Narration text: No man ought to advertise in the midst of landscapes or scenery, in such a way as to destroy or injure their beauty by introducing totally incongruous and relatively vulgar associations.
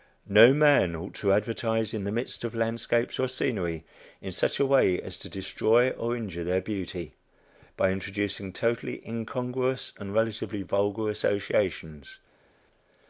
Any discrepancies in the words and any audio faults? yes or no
no